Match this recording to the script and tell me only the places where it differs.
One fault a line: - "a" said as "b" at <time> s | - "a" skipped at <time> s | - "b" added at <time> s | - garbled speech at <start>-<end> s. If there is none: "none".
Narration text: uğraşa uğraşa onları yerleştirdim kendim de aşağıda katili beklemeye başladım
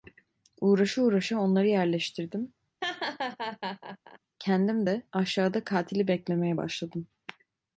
none